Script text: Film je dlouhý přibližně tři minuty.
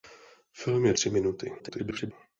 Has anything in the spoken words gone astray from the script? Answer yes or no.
yes